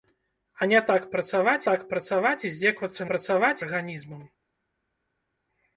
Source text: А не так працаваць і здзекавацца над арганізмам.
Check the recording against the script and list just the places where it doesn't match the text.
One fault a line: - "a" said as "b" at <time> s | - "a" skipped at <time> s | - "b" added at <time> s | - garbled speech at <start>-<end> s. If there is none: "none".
- "так працаваць" added at 1.6 s
- "над" said as "працаваць" at 3.1 s